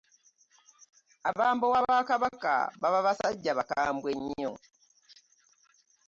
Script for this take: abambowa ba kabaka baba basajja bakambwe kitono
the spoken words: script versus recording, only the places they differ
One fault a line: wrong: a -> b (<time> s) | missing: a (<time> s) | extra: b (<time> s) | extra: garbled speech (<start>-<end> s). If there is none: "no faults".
wrong: kitono -> nnyo (4.2 s)